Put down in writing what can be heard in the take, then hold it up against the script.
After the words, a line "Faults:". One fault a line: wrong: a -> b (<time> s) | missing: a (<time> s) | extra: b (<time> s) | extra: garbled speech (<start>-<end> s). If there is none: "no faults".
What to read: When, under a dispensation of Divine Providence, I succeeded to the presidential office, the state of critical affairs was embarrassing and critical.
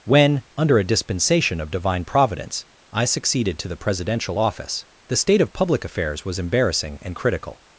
When, under a dispensation of Divine Providence, I succeeded to the presidential office, the state of public affairs was embarrassing and critical.
Faults:
wrong: critical -> public (5.5 s)